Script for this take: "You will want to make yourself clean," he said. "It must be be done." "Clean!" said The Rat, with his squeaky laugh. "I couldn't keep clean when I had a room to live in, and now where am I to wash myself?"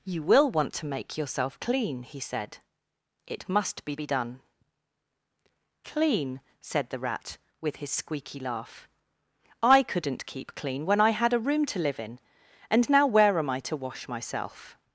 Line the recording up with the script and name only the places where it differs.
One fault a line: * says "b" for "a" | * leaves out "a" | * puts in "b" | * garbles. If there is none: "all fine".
all fine